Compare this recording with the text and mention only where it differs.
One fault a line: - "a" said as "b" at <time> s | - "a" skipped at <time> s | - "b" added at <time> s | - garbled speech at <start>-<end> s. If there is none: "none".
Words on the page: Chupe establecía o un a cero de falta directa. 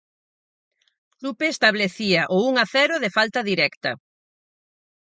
none